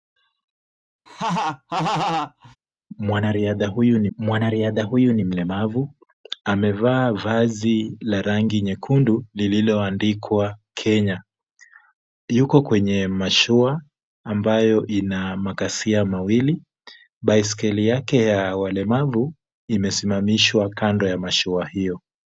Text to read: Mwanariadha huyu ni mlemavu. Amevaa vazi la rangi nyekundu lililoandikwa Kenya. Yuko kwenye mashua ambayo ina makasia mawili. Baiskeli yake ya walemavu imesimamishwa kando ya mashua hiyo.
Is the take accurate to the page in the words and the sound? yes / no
no